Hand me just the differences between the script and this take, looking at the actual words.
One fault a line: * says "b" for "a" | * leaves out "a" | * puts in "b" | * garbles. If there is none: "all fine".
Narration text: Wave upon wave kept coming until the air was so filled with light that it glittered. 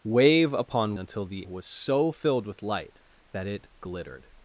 * leaves out "wave kept coming"
* leaves out "air"